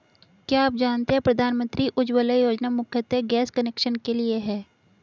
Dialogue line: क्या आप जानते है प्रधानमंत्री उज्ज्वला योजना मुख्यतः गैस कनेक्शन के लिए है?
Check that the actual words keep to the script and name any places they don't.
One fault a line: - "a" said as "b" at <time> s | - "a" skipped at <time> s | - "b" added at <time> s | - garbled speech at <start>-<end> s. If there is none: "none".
none